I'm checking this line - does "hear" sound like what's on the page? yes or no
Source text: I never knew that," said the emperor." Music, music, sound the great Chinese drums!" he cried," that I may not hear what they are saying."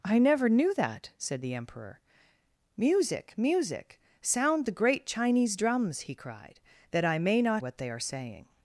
no